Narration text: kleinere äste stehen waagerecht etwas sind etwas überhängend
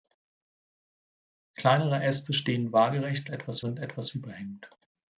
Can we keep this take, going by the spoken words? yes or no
yes